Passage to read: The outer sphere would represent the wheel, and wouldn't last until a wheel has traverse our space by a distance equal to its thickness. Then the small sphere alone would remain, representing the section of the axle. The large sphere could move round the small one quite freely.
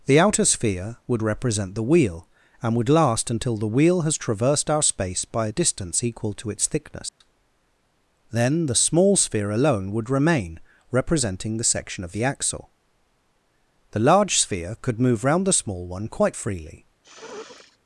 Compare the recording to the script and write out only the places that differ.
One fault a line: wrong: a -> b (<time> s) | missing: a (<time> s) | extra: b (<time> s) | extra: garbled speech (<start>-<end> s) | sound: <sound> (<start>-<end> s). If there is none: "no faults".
wrong: wouldn't -> would (2.8 s)
wrong: a -> the (3.6 s)
wrong: traverse -> traversed (4.2 s)
sound: dropout (7.1-7.2 s)
sound: sniff (17.0-17.8 s)